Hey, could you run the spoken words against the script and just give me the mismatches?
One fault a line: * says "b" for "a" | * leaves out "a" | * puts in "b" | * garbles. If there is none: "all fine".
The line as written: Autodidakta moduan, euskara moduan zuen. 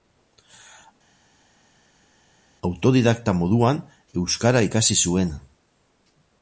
* says "ikasi" for "moduan"